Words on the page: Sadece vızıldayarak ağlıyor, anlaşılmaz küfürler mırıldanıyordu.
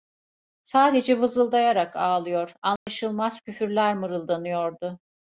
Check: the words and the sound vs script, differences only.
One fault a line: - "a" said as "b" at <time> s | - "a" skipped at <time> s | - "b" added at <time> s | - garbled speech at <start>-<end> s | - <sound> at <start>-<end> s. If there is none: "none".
- dropout at 2.8-2.9 s